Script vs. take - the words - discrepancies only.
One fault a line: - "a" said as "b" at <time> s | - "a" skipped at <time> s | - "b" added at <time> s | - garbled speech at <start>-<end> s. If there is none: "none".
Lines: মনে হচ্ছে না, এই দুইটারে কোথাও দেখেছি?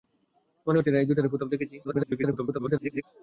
- garbled speech at 1.8-3.0 s